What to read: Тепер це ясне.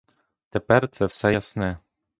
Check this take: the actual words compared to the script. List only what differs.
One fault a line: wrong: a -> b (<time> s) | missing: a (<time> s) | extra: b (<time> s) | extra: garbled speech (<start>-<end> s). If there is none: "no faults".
extra: все (1.1 s)